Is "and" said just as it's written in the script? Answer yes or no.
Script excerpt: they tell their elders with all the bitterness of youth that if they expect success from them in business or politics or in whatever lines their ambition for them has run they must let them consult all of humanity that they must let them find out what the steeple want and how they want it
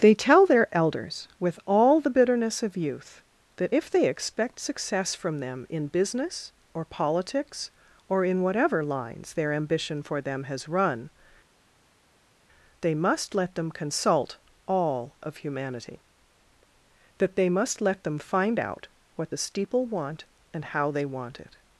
yes